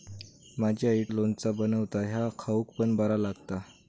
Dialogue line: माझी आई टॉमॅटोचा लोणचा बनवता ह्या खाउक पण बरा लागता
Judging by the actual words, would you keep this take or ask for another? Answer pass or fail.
fail